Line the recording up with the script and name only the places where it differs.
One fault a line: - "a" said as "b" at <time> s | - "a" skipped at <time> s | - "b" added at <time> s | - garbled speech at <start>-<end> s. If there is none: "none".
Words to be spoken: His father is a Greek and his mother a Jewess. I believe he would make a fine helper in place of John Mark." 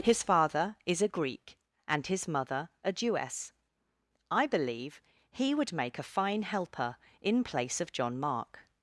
none